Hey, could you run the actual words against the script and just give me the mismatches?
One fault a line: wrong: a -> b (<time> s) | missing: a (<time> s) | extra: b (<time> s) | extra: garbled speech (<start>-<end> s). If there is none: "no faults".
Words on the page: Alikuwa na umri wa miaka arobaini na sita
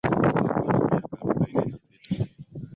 missing: umri (0.8 s)